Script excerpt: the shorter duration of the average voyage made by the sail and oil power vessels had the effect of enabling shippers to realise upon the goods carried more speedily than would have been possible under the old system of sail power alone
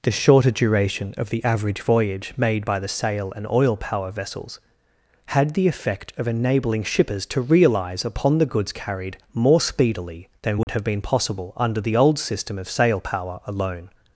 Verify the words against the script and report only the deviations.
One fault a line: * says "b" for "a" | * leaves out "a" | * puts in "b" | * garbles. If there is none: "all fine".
all fine